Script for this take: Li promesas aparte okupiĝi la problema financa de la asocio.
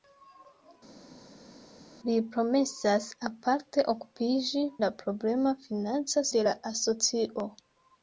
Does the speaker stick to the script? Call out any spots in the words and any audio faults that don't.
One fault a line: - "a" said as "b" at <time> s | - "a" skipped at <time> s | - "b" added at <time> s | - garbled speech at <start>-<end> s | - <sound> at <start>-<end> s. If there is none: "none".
none